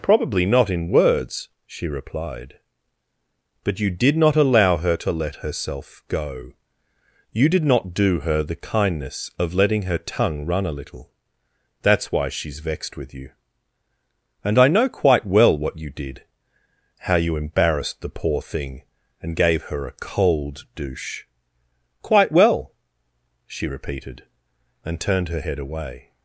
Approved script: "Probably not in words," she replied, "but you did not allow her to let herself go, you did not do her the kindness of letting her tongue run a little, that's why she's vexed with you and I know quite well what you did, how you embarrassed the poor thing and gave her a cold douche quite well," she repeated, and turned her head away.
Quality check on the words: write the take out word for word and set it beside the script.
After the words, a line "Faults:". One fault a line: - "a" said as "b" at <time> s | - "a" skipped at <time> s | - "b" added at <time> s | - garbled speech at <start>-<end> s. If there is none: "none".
"Probably not in words," she replied, "but you did not allow her to let herself go, you did not do her the kindness of letting her tongue run a little, that's why she's vexed with you and I know quite well what you did, how you embarrassed the poor thing and gave her a cold douche quite well," she repeated, and turned her head away.
Faults:
none